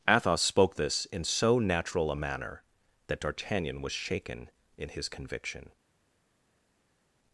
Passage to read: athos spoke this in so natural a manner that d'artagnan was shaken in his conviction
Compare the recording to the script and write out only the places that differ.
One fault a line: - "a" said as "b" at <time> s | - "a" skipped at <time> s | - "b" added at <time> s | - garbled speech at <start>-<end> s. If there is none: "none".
none